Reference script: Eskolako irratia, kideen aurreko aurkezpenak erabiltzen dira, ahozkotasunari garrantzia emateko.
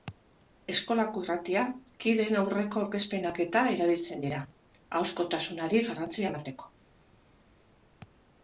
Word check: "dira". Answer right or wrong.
right